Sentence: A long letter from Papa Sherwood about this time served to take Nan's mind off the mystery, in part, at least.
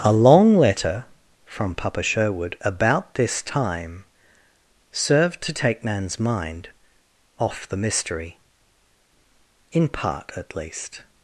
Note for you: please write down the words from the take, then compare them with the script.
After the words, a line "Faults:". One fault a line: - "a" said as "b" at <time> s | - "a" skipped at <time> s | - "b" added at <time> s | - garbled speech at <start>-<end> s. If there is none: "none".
A long letter from Papa Sherwood about this time served to take Nan's mind off the mystery, in part, at least.
Faults:
none